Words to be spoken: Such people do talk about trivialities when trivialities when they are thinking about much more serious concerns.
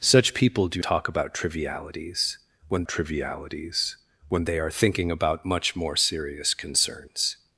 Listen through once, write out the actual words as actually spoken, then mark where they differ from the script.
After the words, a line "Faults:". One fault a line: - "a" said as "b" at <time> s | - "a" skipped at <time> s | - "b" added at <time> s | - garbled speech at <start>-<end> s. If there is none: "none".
Such people do talk about trivialities when trivialities when they are thinking about much more serious concerns.
Faults:
none